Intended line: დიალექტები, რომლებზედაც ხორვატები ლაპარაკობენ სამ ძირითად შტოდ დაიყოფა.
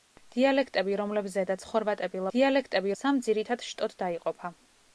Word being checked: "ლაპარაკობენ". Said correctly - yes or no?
no